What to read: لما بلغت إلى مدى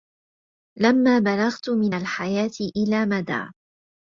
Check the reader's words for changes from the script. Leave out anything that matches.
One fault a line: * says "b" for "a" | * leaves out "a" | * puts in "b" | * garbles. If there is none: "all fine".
* puts in "من الحياة"